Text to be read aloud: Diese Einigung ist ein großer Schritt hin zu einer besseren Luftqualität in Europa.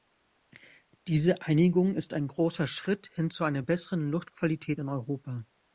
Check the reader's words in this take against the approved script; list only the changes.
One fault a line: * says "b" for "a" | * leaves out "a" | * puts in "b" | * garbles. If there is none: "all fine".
all fine